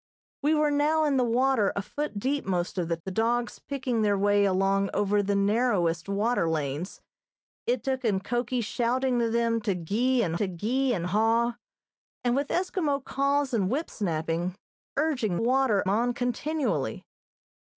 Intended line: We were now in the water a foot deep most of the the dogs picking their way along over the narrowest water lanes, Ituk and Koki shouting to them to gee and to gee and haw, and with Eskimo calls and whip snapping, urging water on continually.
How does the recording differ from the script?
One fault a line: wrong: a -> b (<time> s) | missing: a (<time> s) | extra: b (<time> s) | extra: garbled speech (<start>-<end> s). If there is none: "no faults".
no faults